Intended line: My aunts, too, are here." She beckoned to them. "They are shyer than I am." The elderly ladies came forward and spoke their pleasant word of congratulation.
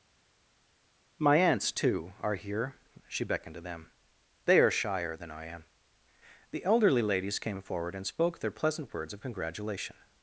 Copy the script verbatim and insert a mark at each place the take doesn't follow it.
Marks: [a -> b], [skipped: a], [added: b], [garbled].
My aunts, too, are here." She beckoned to them. "They are shyer than I am." The elderly ladies came forward and spoke their pleasant [word -> words] of congratulation.